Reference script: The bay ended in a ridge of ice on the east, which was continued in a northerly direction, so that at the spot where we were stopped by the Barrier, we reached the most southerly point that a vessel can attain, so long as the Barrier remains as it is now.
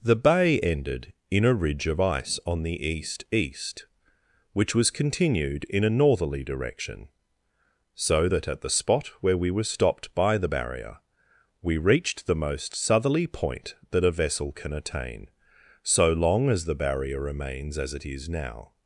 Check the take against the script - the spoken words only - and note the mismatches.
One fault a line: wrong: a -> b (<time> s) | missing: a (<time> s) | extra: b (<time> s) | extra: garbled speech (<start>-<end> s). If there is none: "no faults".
extra: east (3.3 s)